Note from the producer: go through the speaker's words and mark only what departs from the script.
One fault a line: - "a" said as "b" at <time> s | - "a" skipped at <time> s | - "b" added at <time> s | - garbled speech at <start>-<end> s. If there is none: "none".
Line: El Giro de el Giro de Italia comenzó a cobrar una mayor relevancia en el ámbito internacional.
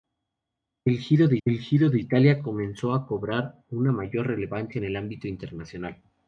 none